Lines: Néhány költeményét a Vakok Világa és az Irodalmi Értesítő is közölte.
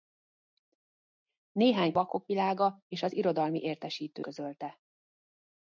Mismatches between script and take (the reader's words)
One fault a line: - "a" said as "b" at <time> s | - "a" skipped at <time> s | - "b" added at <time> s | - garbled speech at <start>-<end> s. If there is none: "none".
- "költeményét a" skipped at 1.9 s
- "is" skipped at 4.3 s